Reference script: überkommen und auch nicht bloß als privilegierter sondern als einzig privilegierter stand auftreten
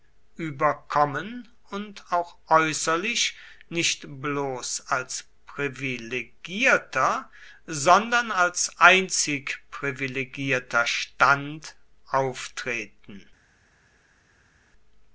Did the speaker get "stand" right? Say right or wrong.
right